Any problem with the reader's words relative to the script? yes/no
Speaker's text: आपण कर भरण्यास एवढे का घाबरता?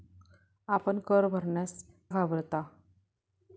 yes